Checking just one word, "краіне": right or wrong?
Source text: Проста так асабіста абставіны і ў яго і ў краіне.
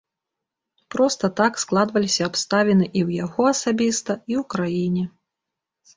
right